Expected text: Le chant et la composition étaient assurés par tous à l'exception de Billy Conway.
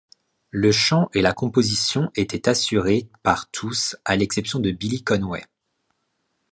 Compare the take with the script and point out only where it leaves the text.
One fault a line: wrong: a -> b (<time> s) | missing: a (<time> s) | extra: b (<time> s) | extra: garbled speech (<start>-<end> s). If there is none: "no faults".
no faults